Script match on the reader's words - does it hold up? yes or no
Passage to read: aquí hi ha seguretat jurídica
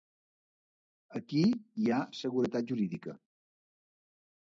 yes